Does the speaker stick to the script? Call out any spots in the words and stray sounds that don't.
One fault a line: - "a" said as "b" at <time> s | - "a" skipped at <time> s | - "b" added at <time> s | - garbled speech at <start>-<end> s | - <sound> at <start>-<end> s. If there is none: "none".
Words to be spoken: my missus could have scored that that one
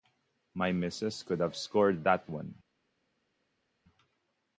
- "that" skipped at 2.3 s